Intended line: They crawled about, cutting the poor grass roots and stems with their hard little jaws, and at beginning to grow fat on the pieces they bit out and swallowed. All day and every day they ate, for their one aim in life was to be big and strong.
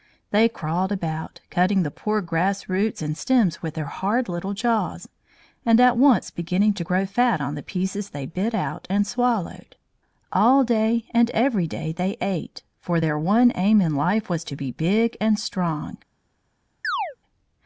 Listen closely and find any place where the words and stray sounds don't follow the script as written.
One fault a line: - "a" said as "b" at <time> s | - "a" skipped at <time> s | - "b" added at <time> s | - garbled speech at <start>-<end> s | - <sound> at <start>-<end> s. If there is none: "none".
- "once" added at 6.0 s
- chirp at 16.8-17.2 s